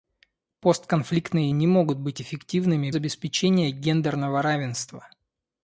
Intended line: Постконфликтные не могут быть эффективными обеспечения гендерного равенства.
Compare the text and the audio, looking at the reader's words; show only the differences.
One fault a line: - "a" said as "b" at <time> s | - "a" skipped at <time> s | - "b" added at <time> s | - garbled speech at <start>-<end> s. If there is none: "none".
none